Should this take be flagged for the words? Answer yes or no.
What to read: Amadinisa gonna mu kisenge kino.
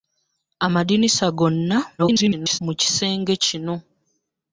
yes